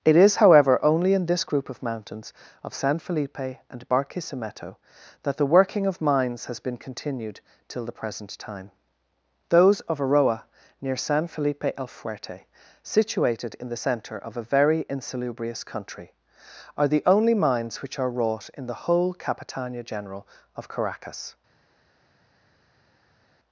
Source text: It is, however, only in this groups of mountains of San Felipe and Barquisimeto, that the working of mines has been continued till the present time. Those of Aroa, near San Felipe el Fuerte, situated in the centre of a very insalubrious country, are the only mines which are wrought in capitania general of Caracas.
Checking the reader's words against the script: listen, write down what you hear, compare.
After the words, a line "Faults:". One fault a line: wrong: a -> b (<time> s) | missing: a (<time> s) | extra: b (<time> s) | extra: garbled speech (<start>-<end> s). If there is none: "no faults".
It is, however, only in this group of mountains of San Felipe and Barquisimeto, that the working of mines has been continued till the present time. Those of Aroa, near San Felipe el Fuerte, situated in the centre of a very insalubrious country, are the only mines which are wrought in the whole capitania general of Caracas.
Faults:
wrong: groups -> group (1.4 s)
extra: the whole (18.7 s)